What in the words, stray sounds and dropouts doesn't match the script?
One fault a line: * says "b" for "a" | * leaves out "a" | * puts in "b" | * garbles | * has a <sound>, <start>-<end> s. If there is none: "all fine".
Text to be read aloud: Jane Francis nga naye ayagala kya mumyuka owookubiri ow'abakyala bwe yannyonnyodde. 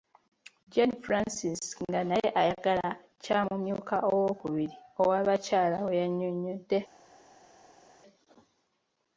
all fine